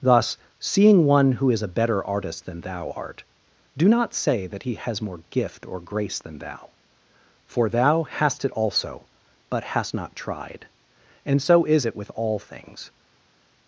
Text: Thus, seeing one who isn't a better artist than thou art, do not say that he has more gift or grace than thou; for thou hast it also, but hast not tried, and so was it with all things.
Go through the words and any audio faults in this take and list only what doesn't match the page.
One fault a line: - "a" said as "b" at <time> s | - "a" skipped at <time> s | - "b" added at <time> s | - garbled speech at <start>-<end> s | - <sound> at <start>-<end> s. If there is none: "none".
- "isn't" said as "is" at 1.5 s
- "was" said as "is" at 11.7 s